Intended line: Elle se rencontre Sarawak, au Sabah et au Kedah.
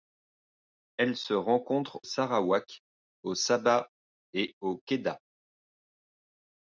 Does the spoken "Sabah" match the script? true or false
true